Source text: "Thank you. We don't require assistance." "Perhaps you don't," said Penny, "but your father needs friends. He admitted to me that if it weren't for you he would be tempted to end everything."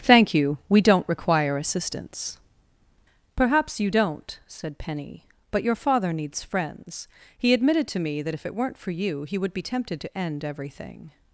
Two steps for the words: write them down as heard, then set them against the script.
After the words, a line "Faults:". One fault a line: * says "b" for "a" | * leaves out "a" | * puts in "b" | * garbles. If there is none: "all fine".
"Thank you. We don't require assistance." "Perhaps you don't," said Penny, "but your father needs friends. He admitted to me that if it weren't for you he would be tempted to end everything."
Faults:
all fine